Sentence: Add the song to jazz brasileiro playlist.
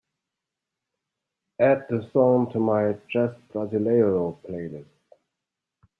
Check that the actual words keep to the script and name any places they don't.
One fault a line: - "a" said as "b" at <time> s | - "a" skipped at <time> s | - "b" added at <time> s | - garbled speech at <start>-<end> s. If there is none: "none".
- "my" added at 2.6 s